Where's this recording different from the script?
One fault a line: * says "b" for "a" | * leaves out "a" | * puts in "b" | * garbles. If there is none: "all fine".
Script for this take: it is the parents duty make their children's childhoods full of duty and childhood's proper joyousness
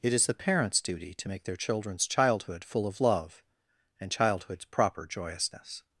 * puts in "to"
* says "childhood" for "childhoods"
* says "love" for "duty"